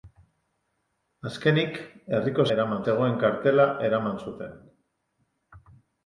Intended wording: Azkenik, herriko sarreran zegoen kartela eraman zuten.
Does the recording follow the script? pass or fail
fail